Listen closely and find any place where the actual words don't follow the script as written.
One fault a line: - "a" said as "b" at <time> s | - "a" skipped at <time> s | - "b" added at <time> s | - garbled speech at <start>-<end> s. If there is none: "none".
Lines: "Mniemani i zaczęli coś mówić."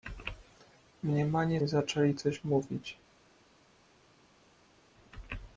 none